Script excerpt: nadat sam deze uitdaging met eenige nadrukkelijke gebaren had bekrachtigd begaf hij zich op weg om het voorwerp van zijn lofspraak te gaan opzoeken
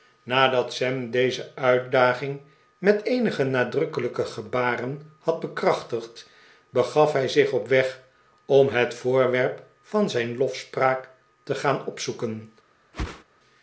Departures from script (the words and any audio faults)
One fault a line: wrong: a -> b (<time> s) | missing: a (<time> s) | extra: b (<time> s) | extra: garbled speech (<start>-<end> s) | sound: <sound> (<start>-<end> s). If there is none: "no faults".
sound: whoosh (12.9-13.2 s)